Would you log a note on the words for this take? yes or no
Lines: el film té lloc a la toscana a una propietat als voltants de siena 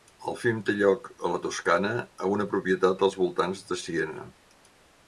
no